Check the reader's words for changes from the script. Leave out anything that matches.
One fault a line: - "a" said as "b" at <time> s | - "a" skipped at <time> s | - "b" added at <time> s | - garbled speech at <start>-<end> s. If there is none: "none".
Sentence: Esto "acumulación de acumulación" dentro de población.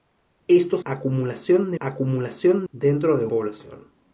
none